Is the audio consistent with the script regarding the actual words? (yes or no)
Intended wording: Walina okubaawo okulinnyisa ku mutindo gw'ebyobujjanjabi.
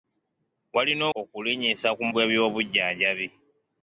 no